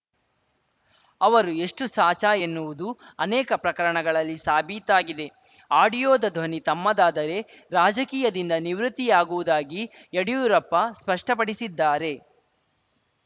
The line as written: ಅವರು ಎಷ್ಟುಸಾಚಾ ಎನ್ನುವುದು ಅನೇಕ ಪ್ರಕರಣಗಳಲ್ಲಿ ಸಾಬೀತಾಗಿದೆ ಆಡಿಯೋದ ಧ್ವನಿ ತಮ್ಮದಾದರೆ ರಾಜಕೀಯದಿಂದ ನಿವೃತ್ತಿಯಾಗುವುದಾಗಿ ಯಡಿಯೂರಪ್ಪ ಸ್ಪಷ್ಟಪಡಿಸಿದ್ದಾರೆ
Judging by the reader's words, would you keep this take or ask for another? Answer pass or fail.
pass